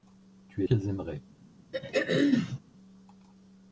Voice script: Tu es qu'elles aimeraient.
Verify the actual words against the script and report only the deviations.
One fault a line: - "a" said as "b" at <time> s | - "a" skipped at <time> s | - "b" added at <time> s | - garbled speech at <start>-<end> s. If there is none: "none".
none